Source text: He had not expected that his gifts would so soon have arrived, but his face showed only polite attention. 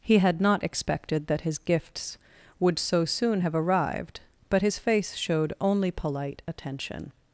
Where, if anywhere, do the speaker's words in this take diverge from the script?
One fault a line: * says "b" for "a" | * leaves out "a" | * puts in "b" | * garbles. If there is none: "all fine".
all fine